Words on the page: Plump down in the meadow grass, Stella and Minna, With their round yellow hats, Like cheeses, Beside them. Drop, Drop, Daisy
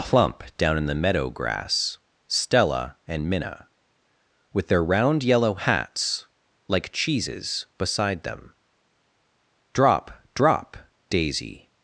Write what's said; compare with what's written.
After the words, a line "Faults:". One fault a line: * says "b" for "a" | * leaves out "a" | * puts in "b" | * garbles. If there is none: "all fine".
Plump down in the meadow grass, Stella and Minna, With their round yellow hats, Like cheeses, Beside them. Drop, Drop, Daisy
Faults:
all fine